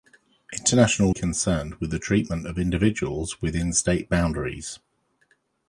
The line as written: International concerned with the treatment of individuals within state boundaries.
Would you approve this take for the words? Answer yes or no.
yes